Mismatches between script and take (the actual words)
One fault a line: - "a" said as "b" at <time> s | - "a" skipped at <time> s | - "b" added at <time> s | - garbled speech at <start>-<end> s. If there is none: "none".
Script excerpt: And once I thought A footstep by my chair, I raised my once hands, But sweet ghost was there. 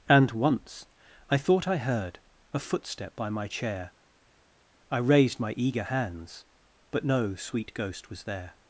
- "I heard" added at 1.7 s
- "once" said as "eager" at 5.6 s
- "no" added at 7.0 s